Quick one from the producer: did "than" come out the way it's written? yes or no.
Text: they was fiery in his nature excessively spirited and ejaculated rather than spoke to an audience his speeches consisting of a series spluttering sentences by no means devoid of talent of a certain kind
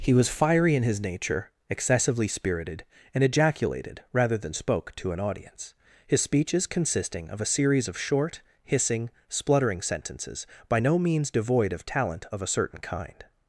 yes